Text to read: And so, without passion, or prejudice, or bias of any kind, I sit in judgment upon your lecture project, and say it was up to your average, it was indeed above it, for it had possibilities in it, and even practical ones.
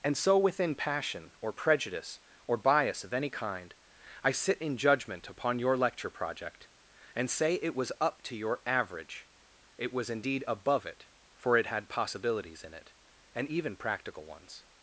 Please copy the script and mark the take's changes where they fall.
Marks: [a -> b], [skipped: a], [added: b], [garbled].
And so, [without -> within] passion, or prejudice, or bias of any kind, I sit in judgment upon your lecture project, and say it was up to your average, it was indeed above it, for it had possibilities in it, and even practical ones.